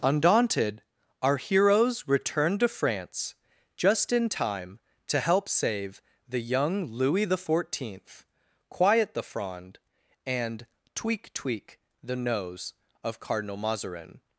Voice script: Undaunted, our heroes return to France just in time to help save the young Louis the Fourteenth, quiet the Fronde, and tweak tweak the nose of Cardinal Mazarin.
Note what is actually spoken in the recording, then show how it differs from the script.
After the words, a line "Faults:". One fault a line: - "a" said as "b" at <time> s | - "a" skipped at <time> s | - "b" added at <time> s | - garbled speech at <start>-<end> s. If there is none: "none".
Undaunted, our heroes return to France just in time to help save the young Louis the Fourteenth, quiet the Fronde, and tweak tweak the nose of Cardinal Mazarin.
Faults:
none